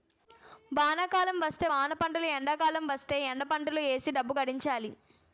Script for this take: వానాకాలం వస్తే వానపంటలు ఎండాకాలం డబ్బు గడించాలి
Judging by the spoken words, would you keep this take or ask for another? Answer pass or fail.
fail